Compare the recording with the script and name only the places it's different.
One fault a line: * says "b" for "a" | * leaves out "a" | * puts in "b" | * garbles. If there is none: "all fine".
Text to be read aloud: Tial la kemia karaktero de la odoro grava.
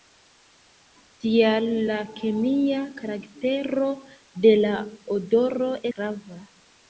all fine